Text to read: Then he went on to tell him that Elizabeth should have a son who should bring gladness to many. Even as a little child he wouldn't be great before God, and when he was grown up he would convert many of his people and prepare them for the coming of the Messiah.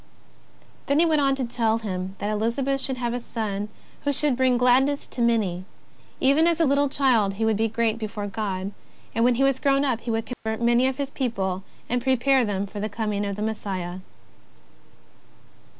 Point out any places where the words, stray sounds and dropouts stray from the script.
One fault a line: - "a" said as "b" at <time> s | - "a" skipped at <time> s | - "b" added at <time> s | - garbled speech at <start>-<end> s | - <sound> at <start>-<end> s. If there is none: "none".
- "wouldn't" said as "would" at 7.4 s
- dropout at 10.3-10.5 s